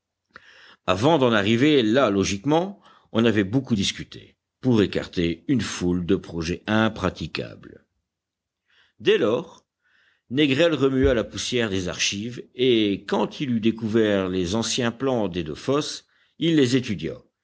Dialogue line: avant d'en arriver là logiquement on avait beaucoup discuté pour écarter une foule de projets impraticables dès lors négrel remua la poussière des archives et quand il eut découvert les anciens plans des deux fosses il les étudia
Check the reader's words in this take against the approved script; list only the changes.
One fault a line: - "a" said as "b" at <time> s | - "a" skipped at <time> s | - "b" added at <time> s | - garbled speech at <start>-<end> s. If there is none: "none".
none